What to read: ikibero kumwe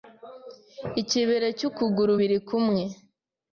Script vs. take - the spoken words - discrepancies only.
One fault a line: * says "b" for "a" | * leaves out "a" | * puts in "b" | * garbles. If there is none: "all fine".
* puts in "cy'ukuguru biri"